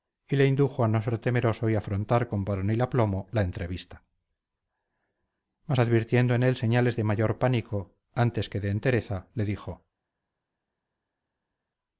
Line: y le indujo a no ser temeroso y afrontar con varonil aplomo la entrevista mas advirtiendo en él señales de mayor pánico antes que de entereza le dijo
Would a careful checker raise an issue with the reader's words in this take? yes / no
no